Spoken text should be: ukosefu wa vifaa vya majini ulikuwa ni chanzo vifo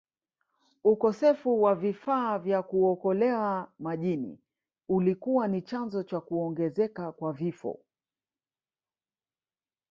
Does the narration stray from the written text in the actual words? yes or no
yes